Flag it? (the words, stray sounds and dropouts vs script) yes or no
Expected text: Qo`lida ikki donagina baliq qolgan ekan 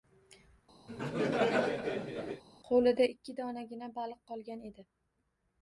yes